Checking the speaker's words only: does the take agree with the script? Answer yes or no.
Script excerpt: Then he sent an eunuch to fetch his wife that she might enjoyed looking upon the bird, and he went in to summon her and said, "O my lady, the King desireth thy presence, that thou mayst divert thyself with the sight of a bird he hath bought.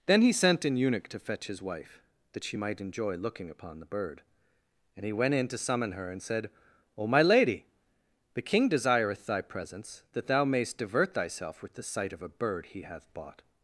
no